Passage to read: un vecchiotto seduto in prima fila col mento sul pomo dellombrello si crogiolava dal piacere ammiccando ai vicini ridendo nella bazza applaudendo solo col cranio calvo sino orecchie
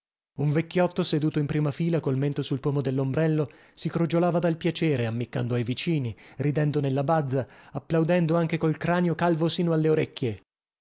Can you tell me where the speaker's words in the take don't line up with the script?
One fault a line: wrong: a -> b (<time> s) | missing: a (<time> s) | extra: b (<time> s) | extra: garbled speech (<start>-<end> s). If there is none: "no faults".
wrong: solo -> anche (8.3 s)
extra: alle (9.7 s)